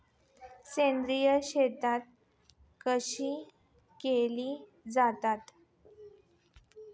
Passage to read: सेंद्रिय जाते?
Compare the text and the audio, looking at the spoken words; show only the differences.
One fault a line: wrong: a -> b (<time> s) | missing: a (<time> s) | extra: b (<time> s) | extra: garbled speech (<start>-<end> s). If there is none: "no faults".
extra: शेती कशी केली (1.4 s)